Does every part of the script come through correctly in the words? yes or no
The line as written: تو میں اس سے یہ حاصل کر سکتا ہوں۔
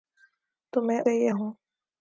no